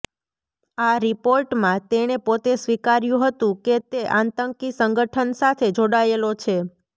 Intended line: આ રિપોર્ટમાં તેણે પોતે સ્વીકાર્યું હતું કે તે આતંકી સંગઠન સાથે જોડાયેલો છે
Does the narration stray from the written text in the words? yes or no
no